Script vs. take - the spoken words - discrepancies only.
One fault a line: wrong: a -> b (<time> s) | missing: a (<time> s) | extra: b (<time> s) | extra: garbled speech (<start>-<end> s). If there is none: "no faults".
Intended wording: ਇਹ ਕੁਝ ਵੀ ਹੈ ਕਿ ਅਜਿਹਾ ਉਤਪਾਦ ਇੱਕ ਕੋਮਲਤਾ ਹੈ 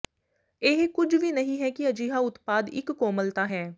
extra: ਨਹੀਂ (1.3 s)